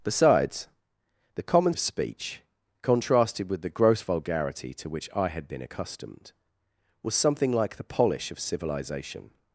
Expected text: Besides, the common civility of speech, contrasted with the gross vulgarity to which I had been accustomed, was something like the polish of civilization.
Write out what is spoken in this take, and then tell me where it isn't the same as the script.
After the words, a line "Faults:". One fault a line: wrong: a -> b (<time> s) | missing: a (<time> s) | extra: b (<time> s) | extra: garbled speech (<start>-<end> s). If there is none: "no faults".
Besides, the common of speech, contrasted with the gross vulgarity to which I had been accustomed, was something like the polish of civilization.
Faults:
missing: civility (1.8 s)